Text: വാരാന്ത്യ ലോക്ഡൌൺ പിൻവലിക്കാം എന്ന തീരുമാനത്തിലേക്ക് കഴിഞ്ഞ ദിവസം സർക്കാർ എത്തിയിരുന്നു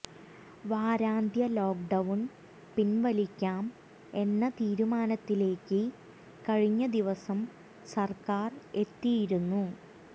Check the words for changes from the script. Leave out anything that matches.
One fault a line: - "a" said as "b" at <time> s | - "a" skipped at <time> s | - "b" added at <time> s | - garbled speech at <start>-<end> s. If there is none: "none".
none